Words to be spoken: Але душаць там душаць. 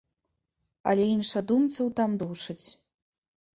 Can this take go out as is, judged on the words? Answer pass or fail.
fail